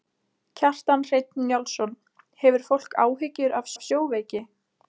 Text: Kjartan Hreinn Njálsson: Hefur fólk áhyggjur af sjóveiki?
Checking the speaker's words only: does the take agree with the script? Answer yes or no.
no